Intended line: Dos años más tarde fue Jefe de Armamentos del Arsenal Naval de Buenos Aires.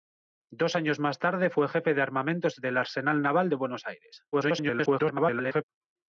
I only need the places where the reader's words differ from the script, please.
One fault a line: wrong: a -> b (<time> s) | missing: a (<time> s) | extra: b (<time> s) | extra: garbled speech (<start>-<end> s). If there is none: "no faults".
extra: garbled speech (4.3-5.6 s)